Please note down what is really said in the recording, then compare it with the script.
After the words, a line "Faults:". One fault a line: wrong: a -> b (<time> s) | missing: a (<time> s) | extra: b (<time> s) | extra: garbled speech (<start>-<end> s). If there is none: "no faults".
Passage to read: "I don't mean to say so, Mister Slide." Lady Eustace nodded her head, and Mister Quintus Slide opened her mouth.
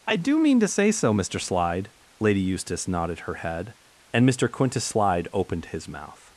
"I do mean to say so, Mister Slide." Lady Eustace nodded her head, and Mister Quintus Slide opened his mouth.
Faults:
wrong: don't -> do (0.1 s)
wrong: her -> his (5.7 s)